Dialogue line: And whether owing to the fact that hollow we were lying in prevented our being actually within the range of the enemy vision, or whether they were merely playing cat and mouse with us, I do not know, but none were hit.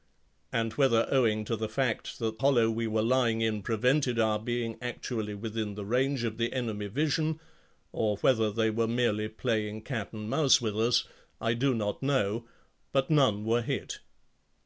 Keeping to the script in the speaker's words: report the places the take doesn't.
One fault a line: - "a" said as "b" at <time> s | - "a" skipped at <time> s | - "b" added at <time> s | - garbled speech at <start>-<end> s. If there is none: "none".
none